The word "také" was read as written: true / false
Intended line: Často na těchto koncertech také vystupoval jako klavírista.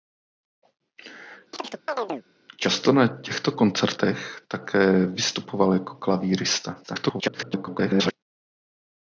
true